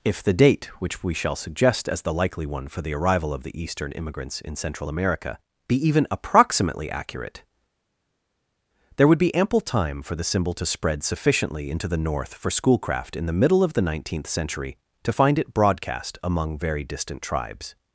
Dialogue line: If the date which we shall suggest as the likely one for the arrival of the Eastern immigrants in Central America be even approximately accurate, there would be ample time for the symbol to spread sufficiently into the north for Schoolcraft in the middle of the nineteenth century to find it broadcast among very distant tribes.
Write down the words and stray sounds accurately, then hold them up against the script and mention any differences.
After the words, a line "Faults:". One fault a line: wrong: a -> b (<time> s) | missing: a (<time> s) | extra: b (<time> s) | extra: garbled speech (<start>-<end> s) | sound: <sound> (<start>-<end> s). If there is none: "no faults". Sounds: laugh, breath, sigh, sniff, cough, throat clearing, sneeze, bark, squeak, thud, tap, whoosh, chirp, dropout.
If the date which we shall suggest as the likely one for the arrival of the Eastern immigrants in Central America be even approximately accurate, there would be ample time for the symbol to spread sufficiently into the north for Schoolcraft in the middle of the nineteenth century to find it broadcast among very distant tribes.
Faults:
no faults